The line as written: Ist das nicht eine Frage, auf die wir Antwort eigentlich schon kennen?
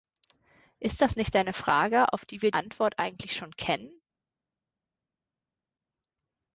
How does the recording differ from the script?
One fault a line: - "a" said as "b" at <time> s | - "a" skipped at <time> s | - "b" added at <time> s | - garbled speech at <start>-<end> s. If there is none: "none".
none